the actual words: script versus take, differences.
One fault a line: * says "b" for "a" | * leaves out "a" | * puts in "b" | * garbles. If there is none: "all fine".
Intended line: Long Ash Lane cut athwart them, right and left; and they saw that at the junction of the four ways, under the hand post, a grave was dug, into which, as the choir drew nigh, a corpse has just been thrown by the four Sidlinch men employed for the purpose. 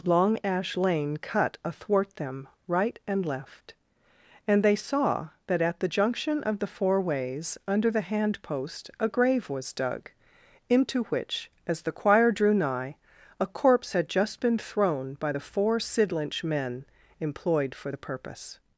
* says "had" for "has"